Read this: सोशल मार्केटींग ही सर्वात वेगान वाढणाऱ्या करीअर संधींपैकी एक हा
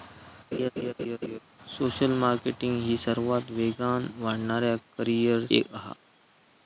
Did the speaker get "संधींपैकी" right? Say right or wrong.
wrong